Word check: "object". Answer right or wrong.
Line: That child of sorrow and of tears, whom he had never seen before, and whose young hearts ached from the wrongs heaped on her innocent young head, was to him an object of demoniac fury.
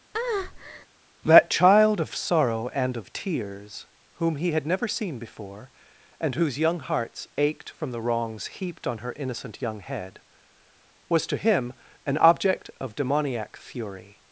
right